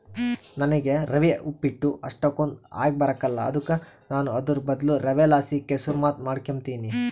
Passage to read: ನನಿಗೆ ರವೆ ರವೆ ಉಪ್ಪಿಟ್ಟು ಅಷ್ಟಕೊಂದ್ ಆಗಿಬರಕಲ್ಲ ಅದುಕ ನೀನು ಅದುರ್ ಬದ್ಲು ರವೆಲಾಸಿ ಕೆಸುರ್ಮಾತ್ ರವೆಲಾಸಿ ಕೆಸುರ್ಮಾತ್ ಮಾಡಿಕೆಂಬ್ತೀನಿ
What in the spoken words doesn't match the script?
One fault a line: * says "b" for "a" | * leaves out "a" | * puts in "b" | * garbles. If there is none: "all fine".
* leaves out "ರವೆ"
* says "ನಾನು" for "ನೀನು"
* leaves out "ರವೆಲಾಸಿ ಕೆಸುರ್ಮಾತ್"